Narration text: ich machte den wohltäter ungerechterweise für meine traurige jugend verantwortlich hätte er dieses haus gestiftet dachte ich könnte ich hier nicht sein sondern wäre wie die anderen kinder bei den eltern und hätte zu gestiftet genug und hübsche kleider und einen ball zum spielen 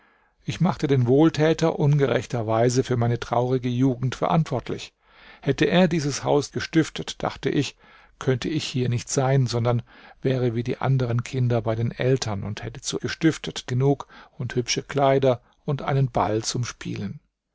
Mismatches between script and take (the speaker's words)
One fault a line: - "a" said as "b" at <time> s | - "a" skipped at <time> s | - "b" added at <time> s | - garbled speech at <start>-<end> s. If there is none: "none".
none